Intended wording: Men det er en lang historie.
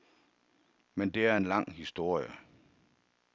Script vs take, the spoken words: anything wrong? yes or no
no